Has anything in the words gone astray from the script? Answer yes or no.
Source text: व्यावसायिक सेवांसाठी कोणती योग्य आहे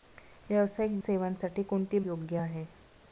no